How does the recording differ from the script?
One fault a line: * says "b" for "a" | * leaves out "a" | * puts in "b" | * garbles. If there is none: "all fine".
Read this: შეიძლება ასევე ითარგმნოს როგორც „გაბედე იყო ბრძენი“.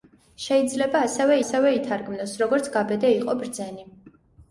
* puts in "ასევე"